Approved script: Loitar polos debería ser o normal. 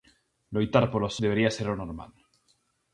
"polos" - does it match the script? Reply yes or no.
yes